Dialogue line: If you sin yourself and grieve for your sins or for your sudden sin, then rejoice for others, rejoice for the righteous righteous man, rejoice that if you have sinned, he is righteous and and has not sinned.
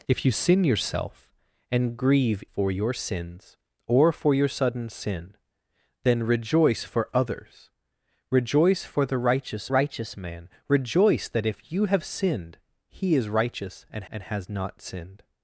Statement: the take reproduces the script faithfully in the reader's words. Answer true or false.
true